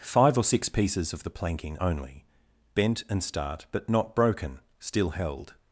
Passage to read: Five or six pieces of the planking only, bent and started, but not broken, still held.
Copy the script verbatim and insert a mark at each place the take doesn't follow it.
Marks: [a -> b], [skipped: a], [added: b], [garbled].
Five or six pieces of the planking only, bent and [started, -> start] but not broken, still held.